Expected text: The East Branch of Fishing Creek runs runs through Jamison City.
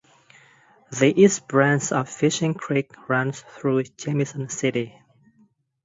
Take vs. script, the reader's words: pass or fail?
fail